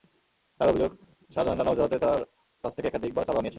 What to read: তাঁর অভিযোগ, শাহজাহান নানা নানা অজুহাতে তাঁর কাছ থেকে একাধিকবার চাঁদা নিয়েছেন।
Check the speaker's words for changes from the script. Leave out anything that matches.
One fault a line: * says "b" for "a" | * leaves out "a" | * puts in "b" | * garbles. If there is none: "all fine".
* leaves out "নানা"